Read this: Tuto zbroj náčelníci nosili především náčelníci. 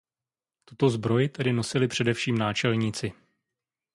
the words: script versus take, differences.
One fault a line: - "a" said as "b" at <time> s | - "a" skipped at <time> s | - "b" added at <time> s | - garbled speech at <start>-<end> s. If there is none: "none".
- "náčelníci" said as "tedy" at 1.3 s